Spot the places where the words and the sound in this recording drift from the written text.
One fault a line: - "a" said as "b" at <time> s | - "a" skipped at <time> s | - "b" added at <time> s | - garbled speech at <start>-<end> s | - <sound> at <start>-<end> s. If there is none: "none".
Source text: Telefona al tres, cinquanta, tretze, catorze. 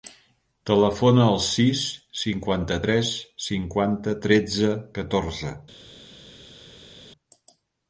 - "sis cinquanta" added at 1.5 s